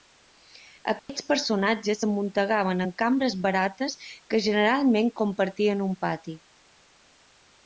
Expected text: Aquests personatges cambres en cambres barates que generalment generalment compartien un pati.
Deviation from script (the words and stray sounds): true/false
true